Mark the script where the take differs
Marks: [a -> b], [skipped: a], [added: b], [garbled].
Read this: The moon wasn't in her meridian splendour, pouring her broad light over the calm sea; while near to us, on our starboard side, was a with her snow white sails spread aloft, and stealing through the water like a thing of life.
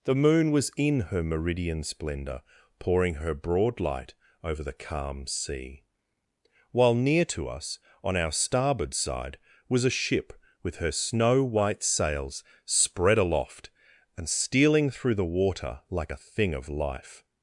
The moon [wasn't -> was] in her meridian splendour, pouring her broad light over the calm sea; while near to us, on our starboard side, was a [added: ship] with her snow white sails spread aloft, and stealing through the water like a thing of life.